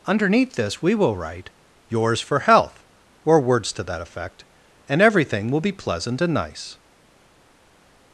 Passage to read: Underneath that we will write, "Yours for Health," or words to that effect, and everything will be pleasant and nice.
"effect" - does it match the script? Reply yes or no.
yes